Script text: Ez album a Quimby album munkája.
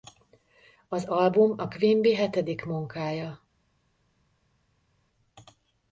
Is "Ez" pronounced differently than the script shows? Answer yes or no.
yes